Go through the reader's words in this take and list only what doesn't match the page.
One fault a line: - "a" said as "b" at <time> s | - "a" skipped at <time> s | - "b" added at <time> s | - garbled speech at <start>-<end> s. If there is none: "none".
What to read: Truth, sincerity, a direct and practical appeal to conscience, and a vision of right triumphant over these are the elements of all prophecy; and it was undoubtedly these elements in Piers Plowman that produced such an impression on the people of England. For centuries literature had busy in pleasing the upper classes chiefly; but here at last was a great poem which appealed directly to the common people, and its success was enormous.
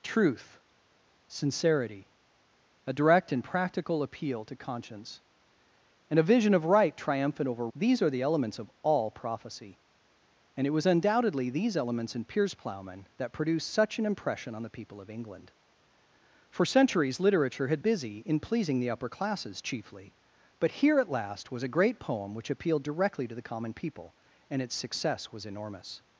none